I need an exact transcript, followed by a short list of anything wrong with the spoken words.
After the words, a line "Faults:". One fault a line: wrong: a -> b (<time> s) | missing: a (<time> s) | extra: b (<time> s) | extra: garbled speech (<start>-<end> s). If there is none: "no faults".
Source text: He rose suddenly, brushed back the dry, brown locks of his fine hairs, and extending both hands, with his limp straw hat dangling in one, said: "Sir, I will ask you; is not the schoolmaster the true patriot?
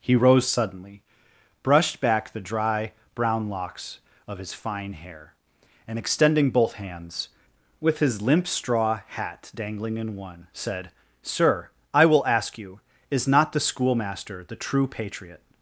He rose suddenly, brushed back the dry, brown locks of his fine hair, and extending both hands, with his limp straw hat dangling in one, said: "Sir, I will ask you; is not the schoolmaster the true patriot?
Faults:
wrong: hairs -> hair (4.9 s)